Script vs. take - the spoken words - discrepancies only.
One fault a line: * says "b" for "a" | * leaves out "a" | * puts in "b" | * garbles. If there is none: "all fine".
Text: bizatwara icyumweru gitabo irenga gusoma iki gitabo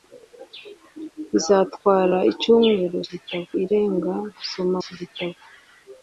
all fine